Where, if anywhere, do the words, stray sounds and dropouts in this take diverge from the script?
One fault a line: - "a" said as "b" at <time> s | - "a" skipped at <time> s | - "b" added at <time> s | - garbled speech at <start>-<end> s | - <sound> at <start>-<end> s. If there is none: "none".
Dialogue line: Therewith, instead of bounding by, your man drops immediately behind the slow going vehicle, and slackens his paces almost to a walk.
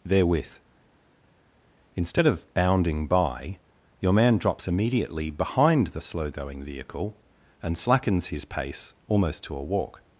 - "paces" said as "pace" at 8.4 s